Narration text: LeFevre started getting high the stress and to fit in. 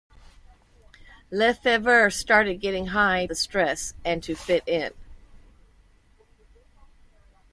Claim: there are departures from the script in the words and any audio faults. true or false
false